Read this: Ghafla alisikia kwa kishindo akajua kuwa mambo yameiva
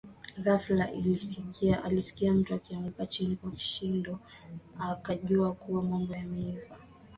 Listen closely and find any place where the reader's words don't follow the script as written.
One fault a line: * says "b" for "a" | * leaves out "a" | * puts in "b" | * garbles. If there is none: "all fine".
* puts in "mtu akianguka chini"